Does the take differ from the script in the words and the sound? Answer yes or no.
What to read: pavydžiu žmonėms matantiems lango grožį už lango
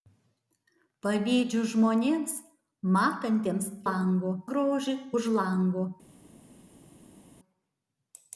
no